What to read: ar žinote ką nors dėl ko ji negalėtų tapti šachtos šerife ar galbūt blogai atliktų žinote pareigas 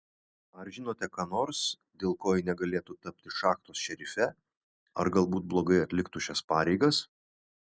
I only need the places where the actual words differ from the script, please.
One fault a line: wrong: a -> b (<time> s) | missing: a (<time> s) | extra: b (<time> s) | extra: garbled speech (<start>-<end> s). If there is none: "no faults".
wrong: žinote -> šias (6.3 s)